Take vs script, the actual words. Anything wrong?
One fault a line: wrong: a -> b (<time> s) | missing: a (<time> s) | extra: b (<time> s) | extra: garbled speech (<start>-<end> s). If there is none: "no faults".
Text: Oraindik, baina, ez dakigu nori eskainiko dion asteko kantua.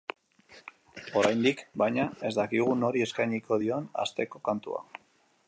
no faults